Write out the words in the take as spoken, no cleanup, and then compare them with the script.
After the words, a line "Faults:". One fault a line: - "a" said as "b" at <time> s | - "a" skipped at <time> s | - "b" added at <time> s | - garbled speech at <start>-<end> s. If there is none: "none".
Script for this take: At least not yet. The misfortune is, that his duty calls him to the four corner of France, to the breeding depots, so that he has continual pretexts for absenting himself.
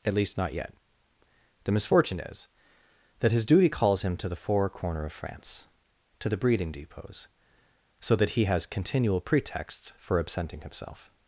At least not yet. The misfortune is, that his duty calls him to the four corner of France, to the breeding depots, so that he has continual pretexts for absenting himself.
Faults:
none